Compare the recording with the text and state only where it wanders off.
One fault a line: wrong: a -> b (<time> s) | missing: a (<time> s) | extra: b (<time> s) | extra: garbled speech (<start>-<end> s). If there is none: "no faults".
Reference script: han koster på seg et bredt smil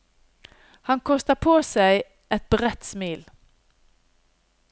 no faults